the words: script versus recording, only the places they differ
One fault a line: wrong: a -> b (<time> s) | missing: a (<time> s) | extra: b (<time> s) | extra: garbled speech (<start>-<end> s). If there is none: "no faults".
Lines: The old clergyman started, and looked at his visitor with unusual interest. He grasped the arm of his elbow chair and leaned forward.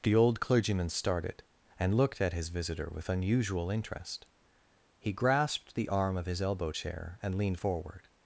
no faults